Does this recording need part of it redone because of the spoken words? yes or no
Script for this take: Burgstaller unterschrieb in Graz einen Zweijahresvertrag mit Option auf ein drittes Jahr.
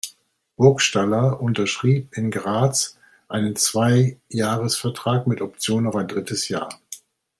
no